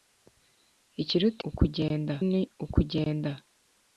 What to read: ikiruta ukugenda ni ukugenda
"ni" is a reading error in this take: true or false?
false